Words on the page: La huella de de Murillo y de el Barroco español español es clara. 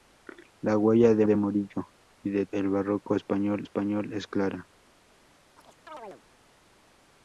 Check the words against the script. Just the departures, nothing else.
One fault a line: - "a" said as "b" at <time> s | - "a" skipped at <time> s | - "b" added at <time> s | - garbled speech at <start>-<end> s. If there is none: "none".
none